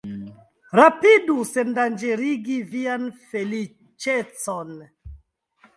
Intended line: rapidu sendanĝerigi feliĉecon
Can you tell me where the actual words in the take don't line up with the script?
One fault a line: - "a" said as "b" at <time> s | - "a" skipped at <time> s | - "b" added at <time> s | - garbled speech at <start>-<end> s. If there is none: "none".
- "vian" added at 2.7 s